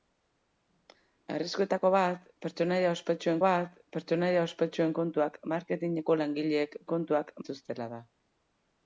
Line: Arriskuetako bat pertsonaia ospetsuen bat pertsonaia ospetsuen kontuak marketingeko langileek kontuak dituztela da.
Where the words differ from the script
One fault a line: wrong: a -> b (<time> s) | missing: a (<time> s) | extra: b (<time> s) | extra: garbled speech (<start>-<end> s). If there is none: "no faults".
no faults